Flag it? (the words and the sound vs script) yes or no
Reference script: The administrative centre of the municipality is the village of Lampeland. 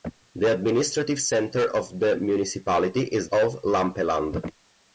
yes